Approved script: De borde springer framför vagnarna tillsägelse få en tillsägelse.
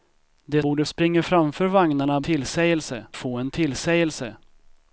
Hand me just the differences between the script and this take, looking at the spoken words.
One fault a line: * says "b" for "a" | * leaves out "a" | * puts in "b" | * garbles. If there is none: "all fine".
all fine